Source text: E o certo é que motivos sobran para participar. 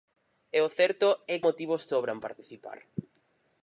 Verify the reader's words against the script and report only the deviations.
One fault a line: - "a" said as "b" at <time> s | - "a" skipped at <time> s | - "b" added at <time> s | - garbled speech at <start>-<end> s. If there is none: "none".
- "que" skipped at 1.4 s
- "para" skipped at 2.2 s